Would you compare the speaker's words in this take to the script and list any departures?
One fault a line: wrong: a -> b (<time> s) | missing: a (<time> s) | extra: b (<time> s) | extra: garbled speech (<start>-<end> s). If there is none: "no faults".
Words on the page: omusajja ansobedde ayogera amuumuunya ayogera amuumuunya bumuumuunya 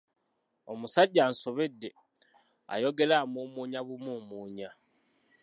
missing: ayogera amuumuunya (3.8 s)